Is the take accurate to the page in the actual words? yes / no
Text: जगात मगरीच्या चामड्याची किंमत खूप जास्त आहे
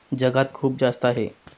no